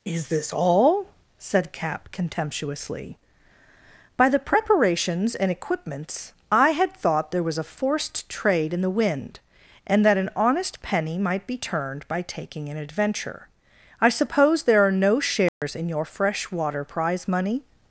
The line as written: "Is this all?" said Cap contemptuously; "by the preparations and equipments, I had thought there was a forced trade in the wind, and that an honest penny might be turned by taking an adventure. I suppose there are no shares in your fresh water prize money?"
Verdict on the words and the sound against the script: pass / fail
fail